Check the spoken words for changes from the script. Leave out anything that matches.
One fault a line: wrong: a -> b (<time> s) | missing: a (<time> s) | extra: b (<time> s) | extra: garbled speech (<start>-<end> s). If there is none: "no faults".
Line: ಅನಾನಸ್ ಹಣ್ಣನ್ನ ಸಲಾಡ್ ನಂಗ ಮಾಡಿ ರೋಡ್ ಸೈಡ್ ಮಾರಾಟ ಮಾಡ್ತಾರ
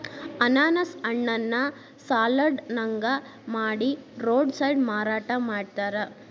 no faults